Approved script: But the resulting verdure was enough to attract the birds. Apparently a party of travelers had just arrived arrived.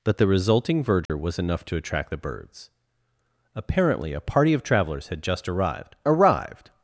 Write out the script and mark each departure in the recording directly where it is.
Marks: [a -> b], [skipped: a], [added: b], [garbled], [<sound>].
But the resulting verdure [dropout] was enough to attract the birds. Apparently a party of travelers had just arrived arrived.